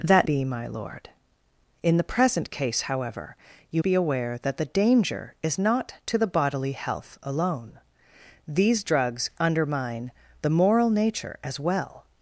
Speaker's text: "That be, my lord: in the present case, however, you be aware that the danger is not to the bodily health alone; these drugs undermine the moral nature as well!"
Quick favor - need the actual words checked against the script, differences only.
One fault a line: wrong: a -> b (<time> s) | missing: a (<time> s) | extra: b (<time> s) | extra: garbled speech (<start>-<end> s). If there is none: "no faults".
no faults